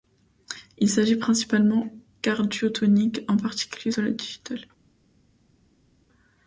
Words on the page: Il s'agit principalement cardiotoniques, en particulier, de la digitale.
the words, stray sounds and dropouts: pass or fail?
pass